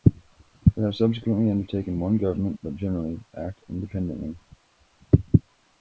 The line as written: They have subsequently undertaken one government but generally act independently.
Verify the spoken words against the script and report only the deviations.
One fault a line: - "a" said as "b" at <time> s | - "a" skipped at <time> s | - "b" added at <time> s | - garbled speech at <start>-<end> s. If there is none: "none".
none